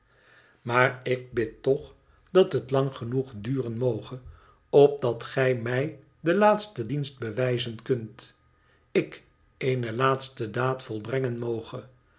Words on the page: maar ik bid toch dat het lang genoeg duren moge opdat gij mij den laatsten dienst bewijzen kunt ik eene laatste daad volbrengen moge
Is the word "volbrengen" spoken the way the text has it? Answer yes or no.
yes